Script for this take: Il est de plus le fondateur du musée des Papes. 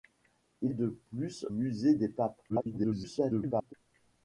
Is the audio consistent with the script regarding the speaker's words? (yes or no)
no